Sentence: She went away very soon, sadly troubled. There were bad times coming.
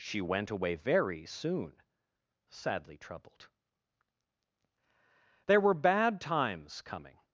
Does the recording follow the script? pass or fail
pass